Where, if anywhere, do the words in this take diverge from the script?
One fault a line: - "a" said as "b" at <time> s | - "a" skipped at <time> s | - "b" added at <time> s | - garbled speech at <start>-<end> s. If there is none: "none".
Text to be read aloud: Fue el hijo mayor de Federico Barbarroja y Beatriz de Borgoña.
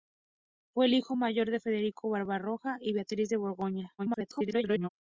- garbled speech at 4.0-4.9 s